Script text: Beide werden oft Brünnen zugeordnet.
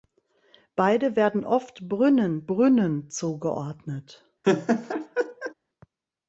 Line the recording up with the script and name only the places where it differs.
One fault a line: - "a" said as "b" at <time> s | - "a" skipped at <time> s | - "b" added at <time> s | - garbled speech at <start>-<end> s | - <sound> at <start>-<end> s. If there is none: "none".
- "Brünnen" added at 2.4 s
- laugh at 4.4-5.5 s